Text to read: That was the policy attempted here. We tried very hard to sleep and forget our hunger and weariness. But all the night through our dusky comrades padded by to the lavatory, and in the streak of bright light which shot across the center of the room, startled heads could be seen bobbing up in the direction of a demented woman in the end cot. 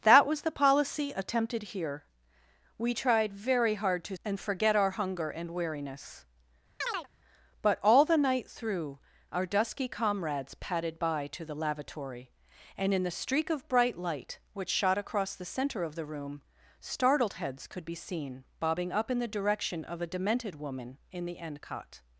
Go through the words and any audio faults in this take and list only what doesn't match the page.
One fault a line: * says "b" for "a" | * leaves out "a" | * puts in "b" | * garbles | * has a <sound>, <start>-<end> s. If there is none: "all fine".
* leaves out "sleep"
* has a chirp, 6.8-7.1 s